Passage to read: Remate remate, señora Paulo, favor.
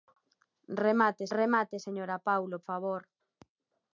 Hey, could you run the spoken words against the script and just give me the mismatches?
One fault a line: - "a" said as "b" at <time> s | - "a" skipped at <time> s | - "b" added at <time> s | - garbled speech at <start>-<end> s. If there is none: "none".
none